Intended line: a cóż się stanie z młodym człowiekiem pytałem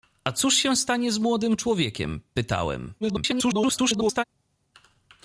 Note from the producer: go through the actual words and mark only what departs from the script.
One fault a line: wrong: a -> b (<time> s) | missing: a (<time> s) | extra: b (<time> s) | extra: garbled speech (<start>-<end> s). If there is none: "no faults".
extra: garbled speech (3.0-4.2 s)